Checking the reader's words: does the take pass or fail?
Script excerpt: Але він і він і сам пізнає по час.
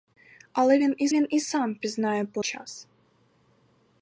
pass